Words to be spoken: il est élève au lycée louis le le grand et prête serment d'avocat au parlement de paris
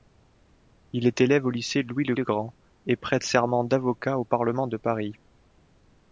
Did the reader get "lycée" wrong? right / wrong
right